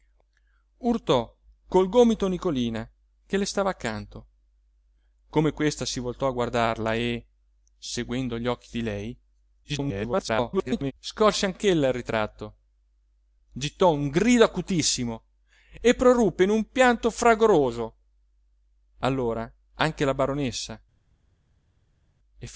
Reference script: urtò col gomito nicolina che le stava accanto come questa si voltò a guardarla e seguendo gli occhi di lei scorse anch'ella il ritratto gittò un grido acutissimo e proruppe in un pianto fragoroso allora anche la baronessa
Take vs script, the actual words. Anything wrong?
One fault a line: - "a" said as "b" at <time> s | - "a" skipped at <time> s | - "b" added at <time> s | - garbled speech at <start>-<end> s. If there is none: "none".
- garbled speech at 9.6-10.9 s